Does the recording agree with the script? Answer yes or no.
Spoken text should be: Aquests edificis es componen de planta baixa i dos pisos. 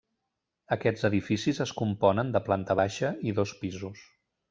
yes